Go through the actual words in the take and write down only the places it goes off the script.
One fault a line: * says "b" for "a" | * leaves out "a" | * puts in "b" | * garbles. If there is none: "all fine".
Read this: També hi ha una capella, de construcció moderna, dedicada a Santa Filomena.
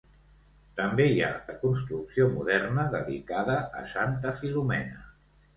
* leaves out "una capella"